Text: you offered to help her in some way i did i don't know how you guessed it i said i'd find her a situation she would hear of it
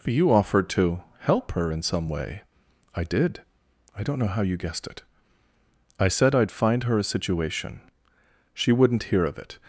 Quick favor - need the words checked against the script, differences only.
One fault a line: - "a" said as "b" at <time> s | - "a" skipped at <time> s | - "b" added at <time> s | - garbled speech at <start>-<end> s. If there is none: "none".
- "would" said as "wouldn't" at 8.7 s